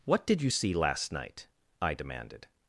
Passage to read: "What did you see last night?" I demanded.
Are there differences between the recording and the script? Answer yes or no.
no